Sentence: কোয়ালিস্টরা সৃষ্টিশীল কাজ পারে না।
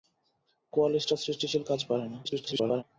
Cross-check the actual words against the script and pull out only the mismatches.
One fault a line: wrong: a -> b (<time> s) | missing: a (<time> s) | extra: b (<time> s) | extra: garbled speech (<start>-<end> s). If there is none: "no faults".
extra: garbled speech (2.2-2.8 s)